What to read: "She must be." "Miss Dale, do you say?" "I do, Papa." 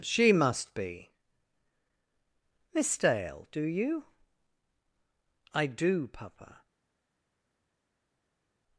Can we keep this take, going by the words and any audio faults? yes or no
no